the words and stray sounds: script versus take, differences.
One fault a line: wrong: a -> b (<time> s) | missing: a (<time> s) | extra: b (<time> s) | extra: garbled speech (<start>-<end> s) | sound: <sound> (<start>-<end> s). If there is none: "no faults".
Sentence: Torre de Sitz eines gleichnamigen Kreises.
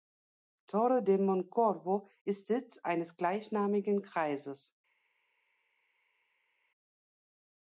extra: Moncorvo ist (1.2 s)